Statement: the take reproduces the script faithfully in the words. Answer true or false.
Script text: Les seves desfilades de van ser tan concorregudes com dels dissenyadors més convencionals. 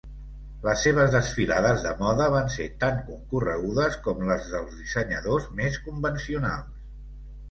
false